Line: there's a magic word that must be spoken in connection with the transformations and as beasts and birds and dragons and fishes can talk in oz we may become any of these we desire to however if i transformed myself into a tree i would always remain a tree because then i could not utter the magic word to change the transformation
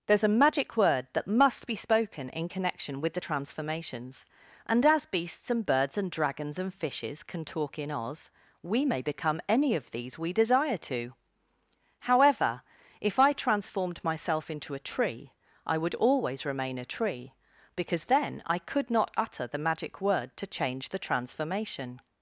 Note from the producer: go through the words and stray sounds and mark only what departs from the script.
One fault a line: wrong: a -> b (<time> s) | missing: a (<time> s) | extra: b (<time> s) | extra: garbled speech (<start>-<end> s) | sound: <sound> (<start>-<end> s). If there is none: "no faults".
no faults